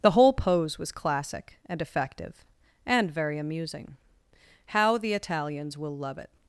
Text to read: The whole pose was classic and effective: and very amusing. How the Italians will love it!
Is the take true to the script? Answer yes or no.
yes